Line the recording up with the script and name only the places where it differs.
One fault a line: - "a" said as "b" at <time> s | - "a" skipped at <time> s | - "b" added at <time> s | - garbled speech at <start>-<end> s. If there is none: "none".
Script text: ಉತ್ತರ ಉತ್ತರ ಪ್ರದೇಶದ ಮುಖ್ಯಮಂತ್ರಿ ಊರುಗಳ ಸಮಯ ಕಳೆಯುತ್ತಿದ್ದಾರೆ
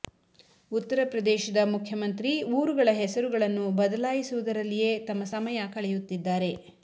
- "ಉತ್ತರ" skipped at 1.0 s
- "ಹೆಸರುಗಳನ್ನು ಬದಲಾಯಿಸುವುದರಲ್ಲಿಯೇ ತಮ್ಮ" added at 3.0 s